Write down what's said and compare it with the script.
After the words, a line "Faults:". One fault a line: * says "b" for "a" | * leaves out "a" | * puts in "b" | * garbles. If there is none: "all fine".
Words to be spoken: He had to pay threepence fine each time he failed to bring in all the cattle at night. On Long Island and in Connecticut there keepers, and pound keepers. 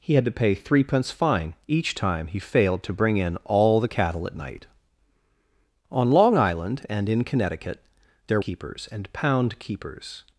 He had to pay threepence fine each time he failed to bring in all the cattle at night. On Long Island and in Connecticut there keepers, and pound keepers.
Faults:
all fine